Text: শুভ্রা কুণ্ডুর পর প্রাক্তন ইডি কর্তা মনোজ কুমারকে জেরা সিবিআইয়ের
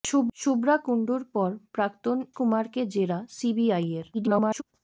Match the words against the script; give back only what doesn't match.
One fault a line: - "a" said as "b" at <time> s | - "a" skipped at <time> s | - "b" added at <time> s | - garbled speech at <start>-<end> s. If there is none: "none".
- "ইডি কর্তা মনোজ" skipped at 2.2 s
- garbled speech at 4.1-4.6 s